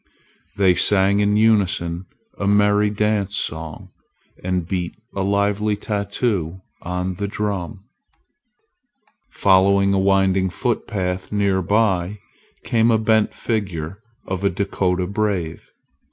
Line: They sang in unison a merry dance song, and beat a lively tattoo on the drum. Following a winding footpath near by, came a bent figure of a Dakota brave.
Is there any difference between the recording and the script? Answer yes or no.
no